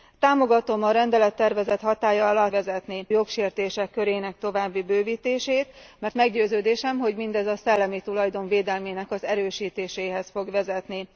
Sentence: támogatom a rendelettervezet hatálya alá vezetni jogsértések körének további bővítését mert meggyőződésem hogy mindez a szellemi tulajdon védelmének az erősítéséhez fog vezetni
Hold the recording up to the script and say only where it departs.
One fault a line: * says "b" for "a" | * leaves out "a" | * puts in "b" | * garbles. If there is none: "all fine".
all fine